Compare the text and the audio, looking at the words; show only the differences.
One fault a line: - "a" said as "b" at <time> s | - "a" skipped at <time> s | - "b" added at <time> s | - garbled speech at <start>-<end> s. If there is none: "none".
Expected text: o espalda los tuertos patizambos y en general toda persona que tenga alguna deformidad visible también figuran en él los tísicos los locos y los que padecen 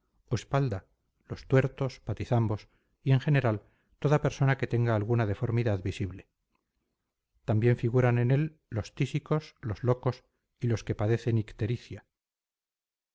none